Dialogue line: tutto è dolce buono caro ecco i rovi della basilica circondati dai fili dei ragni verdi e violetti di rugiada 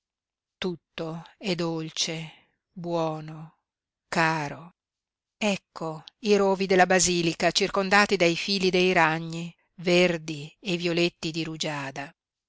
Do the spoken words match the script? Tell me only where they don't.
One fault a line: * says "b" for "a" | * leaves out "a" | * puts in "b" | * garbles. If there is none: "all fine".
all fine